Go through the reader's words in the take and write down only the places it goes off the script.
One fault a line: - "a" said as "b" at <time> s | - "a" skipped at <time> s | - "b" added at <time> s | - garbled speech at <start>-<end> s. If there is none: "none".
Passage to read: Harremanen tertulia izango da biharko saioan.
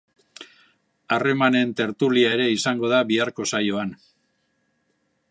- "ere" added at 2.4 s